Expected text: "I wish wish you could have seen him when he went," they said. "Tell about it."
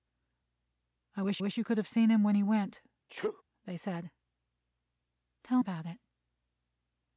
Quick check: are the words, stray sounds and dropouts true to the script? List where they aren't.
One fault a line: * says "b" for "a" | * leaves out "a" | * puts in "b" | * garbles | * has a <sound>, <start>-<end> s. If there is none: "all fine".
* has a sneeze, 3.1-3.4 s